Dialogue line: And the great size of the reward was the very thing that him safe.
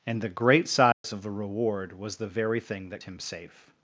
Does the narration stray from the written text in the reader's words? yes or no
no